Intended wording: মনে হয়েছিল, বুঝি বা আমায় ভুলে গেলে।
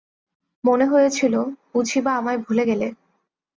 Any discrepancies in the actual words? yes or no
no